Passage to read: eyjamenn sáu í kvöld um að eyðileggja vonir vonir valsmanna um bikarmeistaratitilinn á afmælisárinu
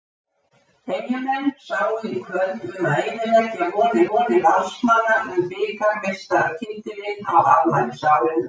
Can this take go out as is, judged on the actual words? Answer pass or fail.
pass